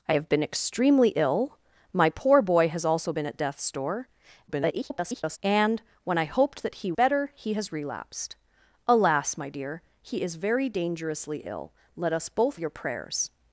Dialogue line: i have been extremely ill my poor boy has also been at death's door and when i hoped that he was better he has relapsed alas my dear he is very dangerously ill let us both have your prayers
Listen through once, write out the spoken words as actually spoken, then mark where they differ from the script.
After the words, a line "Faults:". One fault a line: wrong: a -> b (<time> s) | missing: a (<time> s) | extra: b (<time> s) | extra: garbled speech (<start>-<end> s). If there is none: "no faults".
i have been extremely ill my poor boy has also been at death's door [garbled] and when i hoped that he better he has relapsed alas my dear he is very dangerously ill let us both your prayers
Faults:
extra: garbled speech (4.5-5.4 s)
missing: was (6.9 s)
missing: have (12.6 s)